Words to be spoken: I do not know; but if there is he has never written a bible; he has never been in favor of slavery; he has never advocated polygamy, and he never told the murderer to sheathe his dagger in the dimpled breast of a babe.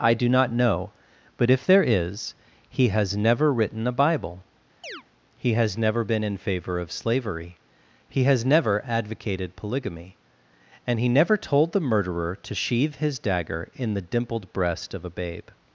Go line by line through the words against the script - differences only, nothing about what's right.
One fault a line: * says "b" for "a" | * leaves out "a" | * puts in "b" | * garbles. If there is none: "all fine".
all fine